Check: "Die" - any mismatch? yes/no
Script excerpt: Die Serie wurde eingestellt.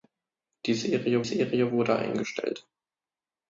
no